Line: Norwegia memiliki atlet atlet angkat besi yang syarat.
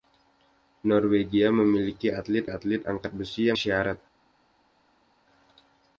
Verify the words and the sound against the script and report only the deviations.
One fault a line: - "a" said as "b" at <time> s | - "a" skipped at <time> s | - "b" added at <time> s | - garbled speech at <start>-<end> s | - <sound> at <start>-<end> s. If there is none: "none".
none